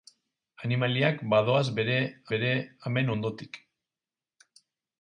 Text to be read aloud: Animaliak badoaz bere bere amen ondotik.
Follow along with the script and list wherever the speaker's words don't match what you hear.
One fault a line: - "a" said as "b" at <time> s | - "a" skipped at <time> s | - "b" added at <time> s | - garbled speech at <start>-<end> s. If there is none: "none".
none